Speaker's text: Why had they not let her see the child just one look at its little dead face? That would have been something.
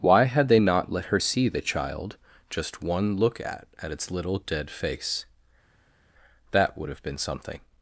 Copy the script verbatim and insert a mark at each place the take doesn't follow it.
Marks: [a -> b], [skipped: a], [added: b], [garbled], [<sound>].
Why had they not let her see the child just one look at [added: at] its little dead face? That would have been something.